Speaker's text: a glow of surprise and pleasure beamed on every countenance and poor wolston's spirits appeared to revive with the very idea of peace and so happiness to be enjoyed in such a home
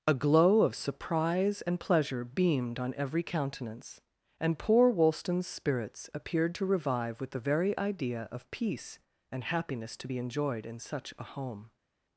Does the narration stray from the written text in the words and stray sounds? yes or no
yes